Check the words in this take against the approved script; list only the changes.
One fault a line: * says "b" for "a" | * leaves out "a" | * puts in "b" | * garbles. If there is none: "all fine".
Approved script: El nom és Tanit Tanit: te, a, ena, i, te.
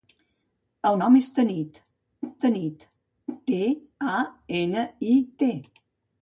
all fine